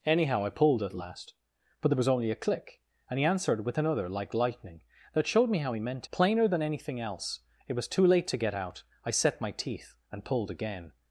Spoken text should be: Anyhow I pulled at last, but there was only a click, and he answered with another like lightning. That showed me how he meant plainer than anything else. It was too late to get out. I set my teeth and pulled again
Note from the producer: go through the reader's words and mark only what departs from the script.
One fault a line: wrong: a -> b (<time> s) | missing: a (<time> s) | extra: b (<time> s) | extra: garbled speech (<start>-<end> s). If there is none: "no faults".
no faults